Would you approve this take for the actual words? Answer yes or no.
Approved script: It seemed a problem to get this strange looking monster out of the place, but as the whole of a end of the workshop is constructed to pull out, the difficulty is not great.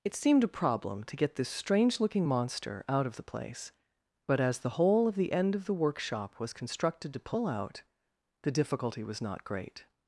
no